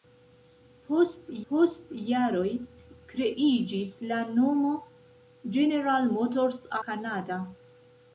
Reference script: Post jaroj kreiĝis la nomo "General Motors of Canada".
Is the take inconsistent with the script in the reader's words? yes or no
yes